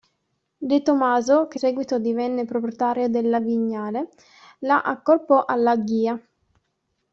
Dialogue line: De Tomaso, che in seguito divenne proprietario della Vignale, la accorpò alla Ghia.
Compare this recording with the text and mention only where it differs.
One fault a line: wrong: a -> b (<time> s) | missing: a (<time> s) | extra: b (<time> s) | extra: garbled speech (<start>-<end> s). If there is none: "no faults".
missing: in (1.6 s)